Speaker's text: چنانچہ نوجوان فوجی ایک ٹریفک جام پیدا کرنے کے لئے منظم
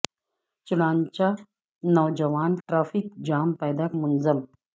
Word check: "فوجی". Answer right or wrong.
wrong